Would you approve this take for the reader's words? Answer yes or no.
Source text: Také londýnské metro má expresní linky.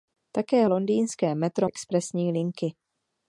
no